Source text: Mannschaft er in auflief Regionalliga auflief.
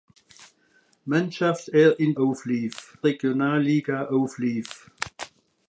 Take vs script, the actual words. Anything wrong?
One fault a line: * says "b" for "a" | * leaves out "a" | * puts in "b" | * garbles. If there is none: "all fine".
all fine